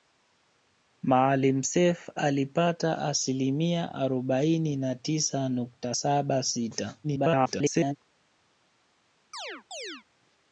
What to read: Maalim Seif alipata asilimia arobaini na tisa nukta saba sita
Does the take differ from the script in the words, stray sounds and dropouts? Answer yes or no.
yes